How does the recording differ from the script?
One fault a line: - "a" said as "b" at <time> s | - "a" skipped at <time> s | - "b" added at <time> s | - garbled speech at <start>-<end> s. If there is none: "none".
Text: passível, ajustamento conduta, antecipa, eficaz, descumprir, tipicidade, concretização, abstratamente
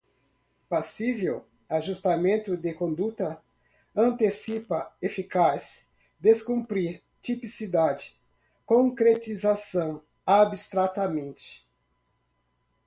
- "de" added at 2.6 s